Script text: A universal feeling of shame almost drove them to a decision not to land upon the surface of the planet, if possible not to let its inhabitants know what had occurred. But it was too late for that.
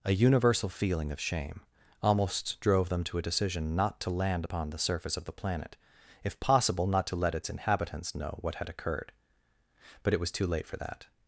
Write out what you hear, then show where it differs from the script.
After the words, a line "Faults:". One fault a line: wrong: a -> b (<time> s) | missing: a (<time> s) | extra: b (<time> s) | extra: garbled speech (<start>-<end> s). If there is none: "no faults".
A universal feeling of shame almost drove them to a decision not to land upon the surface of the planet, if possible not to let its inhabitants know what had occurred. But it was too late for that.
Faults:
no faults